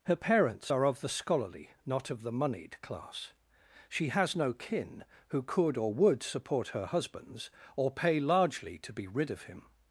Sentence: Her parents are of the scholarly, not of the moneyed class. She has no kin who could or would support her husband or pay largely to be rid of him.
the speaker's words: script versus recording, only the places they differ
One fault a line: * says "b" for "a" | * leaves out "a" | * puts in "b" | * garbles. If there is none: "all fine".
* says "husbands" for "husband"